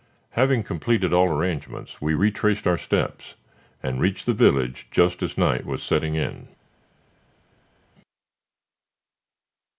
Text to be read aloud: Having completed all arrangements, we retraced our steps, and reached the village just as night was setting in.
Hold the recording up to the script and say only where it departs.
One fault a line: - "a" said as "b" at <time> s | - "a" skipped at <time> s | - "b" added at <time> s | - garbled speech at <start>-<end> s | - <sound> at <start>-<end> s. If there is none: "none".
none